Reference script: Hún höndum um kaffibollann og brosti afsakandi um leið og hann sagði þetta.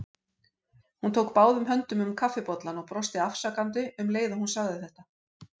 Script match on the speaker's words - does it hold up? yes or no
no